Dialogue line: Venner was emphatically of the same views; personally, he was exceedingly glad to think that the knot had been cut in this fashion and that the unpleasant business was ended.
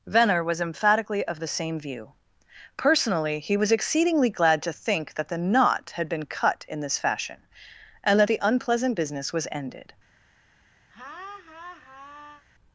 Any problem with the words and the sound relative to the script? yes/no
yes